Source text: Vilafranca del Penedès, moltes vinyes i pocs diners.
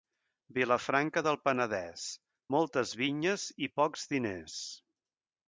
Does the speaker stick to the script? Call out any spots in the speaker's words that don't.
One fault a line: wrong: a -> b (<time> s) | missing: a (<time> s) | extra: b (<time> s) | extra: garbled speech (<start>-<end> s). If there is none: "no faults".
no faults